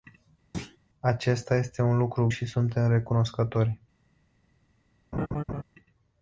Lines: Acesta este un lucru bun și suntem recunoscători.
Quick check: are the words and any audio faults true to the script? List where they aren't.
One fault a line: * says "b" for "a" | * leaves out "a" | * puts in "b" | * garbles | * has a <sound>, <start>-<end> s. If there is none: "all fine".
* has a thud, 0.5-0.8 s
* leaves out "bun"
* has a laugh, 5.1-5.6 s